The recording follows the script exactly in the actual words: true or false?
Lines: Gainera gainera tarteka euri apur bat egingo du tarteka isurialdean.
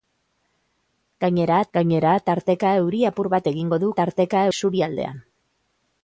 true